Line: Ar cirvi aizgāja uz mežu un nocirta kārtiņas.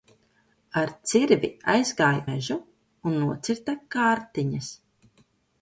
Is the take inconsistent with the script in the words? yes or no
yes